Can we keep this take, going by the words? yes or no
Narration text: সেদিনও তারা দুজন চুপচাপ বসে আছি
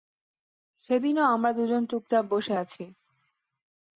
no